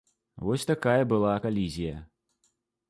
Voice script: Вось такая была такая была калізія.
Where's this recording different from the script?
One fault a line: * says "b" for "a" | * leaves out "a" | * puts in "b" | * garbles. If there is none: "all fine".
* leaves out "такая была"